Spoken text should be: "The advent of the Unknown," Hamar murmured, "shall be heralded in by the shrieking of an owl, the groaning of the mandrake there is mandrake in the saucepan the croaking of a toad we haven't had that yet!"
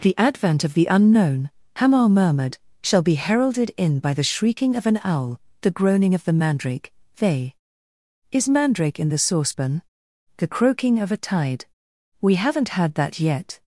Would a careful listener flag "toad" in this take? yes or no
yes